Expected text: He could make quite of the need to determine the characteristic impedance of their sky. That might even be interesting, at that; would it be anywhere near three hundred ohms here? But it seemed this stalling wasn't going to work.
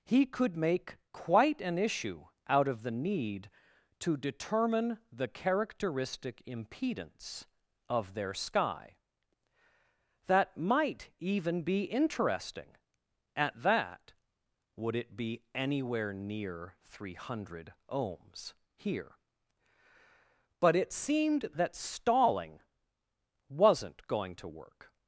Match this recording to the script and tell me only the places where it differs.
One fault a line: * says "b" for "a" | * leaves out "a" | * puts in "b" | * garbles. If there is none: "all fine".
* puts in "an issue out"
* says "that" for "this"